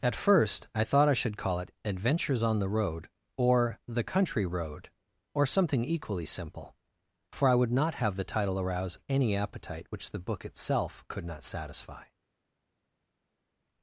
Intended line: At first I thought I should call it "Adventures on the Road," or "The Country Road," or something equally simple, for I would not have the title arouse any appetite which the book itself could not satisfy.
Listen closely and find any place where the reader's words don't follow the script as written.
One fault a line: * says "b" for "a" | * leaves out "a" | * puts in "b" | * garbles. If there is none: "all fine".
all fine